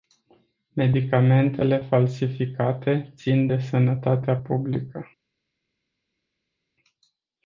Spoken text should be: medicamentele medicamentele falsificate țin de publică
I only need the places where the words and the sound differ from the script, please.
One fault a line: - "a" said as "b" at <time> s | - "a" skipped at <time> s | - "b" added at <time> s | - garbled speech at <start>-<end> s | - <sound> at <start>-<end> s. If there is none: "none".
- "medicamentele" skipped at 1.8 s
- "sănătatea" added at 3.6 s